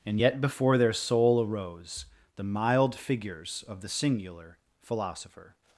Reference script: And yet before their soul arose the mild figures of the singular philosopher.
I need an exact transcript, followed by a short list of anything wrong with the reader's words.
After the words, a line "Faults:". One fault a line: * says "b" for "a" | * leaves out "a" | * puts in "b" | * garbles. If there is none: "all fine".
And yet before their soul arose the mild figures of the singular philosopher.
Faults:
all fine